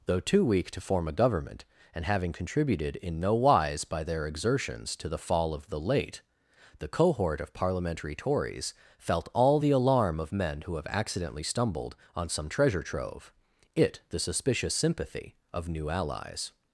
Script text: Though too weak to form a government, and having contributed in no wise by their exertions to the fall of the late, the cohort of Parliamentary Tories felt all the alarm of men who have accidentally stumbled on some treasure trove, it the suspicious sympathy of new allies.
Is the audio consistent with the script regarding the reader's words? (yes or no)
yes